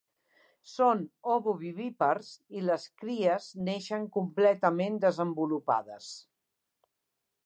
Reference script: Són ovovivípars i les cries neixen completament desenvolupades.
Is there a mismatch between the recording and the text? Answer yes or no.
no